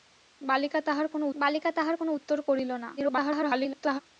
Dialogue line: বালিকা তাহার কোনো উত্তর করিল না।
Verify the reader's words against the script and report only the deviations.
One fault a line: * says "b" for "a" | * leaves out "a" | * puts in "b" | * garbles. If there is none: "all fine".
* puts in "বালিকা তাহার কোনো"
* garbles